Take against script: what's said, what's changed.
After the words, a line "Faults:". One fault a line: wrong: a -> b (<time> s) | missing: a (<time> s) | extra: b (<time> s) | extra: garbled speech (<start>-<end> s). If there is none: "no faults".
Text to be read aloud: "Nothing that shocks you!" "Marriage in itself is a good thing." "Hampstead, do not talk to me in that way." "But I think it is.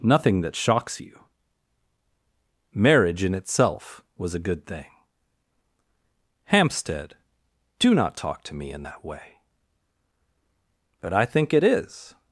"Nothing that shocks you!" "Marriage in itself was a good thing." "Hampstead, do not talk to me in that way." "But I think it is.
Faults:
wrong: is -> was (4.2 s)